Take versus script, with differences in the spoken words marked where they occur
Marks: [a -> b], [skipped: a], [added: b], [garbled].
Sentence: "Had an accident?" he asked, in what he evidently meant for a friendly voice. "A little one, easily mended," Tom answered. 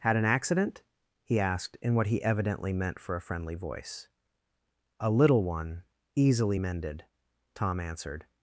"Had an accident?" he asked, in what he evidently meant for a friendly voice. "A little one, easily mended," Tom answered.